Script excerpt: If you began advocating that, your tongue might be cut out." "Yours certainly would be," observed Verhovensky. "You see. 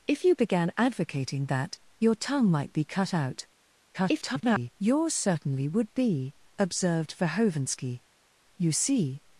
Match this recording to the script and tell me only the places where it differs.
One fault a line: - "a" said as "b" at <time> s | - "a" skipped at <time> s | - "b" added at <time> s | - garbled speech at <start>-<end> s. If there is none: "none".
- garbled speech at 3.9-4.7 s